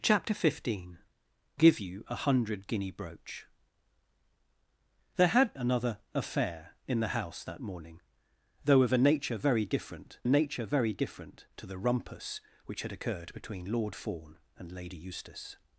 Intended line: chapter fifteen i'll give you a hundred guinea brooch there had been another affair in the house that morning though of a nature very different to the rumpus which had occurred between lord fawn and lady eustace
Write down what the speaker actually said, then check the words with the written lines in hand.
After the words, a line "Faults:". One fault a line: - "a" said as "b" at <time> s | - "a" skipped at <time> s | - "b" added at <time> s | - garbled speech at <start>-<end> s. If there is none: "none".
chapter fifteen give you a hundred guinea brooch there had another affair in the house that morning though of a nature very different nature very different to the rumpus which had occurred between lord fawn and lady eustace
Faults:
- "i'll" skipped at 1.0 s
- "been" skipped at 5.5 s
- "nature very different" added at 10.3 s